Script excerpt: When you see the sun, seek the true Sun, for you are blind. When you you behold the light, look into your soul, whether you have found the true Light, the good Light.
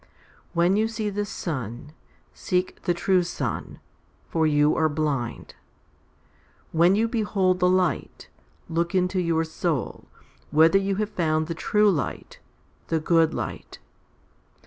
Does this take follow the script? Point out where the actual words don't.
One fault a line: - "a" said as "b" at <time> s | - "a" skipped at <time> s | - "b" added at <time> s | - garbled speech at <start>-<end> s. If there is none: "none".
- "you" skipped at 7.1 s